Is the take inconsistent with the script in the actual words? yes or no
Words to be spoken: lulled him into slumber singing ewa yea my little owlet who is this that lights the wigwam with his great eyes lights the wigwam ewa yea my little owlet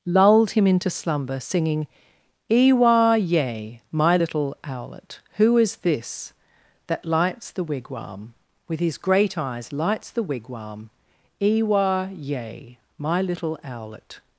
no